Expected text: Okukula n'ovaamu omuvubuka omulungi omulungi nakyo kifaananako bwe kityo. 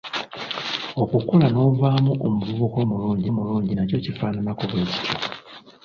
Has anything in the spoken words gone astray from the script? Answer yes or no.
no